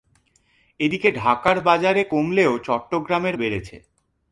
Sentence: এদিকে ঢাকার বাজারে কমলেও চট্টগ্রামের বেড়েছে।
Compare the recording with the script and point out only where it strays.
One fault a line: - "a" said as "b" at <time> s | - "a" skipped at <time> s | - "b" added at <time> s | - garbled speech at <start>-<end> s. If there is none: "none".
none